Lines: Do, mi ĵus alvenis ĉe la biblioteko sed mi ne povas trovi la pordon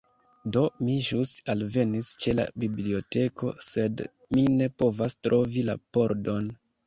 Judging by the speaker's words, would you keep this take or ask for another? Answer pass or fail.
pass